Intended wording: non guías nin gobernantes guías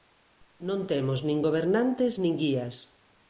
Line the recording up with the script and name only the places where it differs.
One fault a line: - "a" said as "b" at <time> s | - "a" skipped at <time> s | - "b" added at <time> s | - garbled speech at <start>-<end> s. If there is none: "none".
- "guías" said as "temos" at 0.9 s
- "nin" added at 2.2 s